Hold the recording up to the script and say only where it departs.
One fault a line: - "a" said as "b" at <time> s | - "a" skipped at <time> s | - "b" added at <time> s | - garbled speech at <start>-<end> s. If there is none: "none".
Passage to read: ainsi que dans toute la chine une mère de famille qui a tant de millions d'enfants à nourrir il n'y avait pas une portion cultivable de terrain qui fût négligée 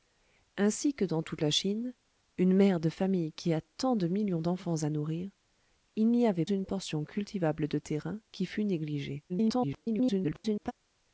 - "pas" skipped at 6.4 s
- garbled speech at 9.3-10.7 s